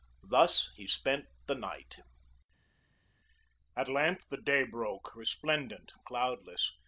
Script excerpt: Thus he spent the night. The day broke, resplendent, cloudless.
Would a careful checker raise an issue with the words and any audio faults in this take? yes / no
yes